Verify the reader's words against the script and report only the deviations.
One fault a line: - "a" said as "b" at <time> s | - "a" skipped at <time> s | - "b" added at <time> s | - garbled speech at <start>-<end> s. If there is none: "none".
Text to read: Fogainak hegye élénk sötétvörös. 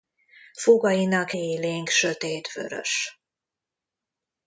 - "hegye" skipped at 1.3 s